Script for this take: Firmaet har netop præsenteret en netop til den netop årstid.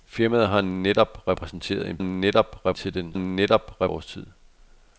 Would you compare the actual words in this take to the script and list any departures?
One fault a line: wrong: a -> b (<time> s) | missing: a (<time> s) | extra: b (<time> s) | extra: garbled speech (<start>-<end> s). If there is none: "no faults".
no faults